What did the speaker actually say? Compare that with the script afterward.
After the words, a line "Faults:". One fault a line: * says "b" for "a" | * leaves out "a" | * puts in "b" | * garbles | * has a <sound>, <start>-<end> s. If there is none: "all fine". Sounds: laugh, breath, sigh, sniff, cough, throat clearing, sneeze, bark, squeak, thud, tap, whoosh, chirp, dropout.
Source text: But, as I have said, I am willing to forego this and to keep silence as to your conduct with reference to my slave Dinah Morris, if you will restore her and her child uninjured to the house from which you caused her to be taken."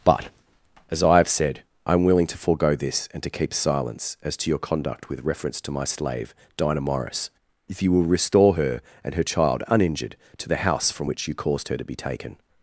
But, as I have said, I am willing to forego this and to keep silence as to your conduct with reference to my slave Dinah Morris, if you will restore her and her child uninjured to the house from which you caused her to be taken."
Faults:
all fine